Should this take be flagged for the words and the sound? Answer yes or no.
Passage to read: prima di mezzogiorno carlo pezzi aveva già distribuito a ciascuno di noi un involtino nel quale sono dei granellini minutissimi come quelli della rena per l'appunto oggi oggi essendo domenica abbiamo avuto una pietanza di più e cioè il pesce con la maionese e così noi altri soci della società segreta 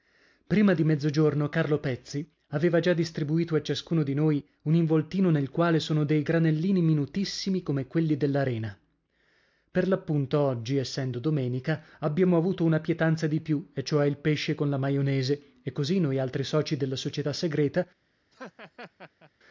yes